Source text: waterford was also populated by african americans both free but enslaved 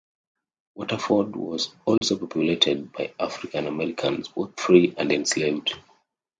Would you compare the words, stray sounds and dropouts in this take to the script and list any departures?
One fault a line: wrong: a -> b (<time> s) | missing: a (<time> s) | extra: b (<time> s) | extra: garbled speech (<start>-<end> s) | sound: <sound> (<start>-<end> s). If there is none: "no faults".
sound: dropout (2.0-2.0 s)
wrong: but -> and (5.0 s)